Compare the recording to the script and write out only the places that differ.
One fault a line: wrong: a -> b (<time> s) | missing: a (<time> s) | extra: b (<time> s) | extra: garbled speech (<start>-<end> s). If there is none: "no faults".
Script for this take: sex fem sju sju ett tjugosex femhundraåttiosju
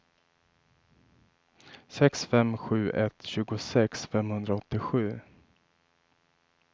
missing: sju (2.9 s)